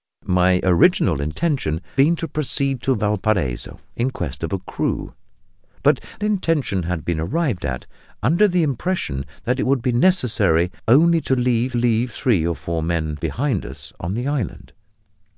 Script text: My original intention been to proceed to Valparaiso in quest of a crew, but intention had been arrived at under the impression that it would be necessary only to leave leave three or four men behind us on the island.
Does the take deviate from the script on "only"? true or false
false